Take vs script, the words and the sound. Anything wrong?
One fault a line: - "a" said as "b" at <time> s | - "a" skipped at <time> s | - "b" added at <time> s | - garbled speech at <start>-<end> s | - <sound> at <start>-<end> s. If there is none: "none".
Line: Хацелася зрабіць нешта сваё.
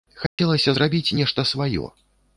- dropout at 0.3-0.4 s